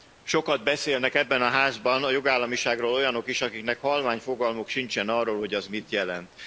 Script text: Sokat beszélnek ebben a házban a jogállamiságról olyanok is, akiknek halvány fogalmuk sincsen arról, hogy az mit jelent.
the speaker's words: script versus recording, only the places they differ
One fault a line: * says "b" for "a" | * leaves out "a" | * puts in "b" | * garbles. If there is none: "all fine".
all fine